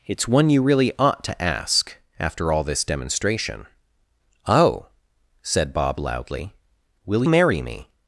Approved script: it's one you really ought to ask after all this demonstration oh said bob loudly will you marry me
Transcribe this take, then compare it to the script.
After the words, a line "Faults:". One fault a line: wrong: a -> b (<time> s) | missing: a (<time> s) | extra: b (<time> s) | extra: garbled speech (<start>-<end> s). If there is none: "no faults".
it's one you really ought to ask after all this demonstration oh said bob loudly will marry me
Faults:
missing: you (7.2 s)